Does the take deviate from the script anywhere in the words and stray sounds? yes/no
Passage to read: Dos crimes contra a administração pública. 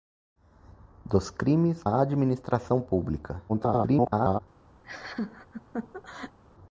yes